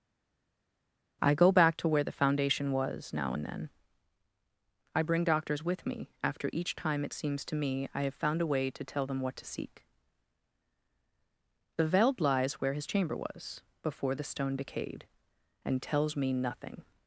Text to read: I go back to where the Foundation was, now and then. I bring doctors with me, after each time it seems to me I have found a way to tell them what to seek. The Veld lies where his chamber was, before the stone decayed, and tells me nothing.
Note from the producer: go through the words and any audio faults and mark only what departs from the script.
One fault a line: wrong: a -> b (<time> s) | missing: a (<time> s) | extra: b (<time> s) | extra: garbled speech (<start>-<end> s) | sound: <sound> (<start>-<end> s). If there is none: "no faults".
no faults